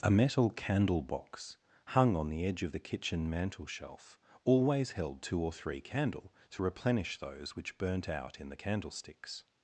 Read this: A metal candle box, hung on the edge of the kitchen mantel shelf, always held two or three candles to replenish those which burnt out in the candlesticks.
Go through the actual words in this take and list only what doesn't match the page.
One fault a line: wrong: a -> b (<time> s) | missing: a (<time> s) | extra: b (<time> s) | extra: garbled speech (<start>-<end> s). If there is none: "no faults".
wrong: candles -> candle (5.8 s)